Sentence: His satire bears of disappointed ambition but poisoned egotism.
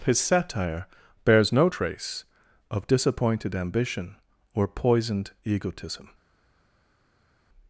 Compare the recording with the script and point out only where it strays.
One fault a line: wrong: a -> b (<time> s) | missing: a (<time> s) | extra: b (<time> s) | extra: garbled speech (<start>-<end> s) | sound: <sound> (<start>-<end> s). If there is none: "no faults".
extra: no trace (1.5 s)
wrong: but -> or (4.5 s)